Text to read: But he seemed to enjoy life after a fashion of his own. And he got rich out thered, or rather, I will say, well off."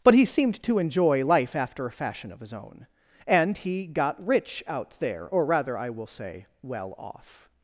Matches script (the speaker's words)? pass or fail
fail